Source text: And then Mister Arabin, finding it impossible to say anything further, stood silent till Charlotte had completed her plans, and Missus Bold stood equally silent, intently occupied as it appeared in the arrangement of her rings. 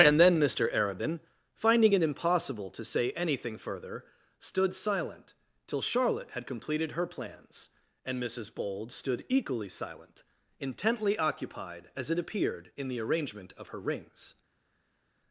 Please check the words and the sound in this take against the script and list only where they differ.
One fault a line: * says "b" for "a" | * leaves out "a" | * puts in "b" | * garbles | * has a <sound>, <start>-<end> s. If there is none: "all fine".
all fine